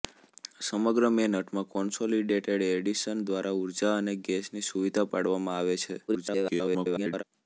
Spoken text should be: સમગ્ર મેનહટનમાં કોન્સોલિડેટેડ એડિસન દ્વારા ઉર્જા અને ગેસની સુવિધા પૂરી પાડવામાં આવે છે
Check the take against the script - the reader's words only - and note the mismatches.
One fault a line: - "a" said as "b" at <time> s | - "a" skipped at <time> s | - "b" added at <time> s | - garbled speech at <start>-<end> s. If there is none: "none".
- "પૂરી" skipped at 5.1 s
- garbled speech at 6.1-7.2 s